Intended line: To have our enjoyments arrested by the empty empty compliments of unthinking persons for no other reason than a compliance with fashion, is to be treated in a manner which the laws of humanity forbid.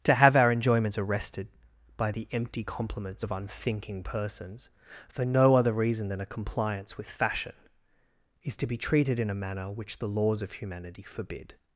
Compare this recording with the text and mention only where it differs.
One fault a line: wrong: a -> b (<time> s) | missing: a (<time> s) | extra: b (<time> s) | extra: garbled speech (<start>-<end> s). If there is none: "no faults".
missing: empty (2.6 s)